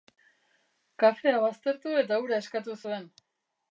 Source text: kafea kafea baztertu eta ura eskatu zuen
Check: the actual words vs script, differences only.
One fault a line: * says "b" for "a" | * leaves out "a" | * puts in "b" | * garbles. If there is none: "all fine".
* leaves out "kafea"